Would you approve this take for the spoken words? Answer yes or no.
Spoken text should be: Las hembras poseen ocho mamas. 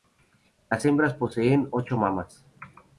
yes